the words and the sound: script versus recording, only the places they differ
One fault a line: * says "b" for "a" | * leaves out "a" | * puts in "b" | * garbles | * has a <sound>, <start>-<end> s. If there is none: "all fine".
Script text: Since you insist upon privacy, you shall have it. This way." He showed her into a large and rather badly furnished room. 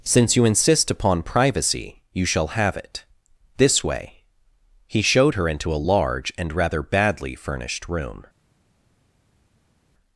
all fine